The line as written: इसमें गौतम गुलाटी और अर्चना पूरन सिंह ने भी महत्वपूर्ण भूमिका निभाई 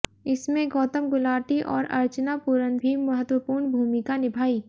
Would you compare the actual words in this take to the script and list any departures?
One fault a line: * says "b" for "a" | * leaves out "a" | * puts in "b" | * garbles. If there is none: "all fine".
* leaves out "सिंह ने"